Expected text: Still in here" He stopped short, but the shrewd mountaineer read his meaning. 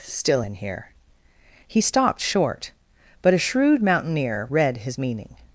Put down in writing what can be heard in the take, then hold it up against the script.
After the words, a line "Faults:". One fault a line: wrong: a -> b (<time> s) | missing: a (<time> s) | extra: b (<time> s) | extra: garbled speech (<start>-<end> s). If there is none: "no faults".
Still in here" He stopped short, but a shrewd mountaineer read his meaning.
Faults:
wrong: the -> a (3.3 s)